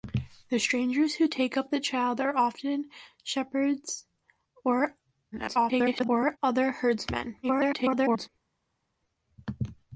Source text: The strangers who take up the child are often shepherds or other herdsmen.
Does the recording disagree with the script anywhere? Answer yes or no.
yes